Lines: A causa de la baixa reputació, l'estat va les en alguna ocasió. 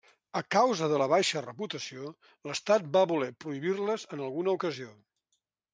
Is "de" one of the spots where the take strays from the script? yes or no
no